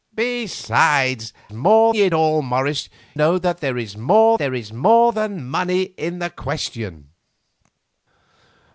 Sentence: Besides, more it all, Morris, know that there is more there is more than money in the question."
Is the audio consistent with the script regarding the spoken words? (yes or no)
yes